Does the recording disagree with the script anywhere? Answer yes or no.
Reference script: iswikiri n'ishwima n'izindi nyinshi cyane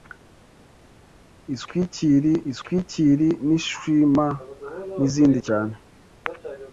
yes